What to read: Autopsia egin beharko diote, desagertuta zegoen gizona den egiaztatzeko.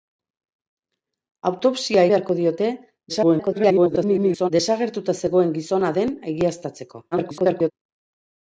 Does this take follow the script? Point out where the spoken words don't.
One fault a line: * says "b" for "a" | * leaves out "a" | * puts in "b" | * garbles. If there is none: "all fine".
* leaves out "egin"
* garbles
* garbles